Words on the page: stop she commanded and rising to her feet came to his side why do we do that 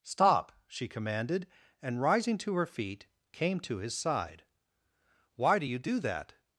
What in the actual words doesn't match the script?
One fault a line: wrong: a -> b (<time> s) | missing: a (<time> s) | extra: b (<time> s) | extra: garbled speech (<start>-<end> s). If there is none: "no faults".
wrong: we -> you (5.6 s)